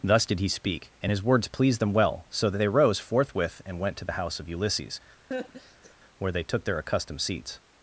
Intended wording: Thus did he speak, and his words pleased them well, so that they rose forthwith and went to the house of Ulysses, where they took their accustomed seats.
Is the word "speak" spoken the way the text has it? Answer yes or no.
yes